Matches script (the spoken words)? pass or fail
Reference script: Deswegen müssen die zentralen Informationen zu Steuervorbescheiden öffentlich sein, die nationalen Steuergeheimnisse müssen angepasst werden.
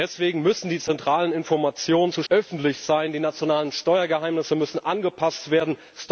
fail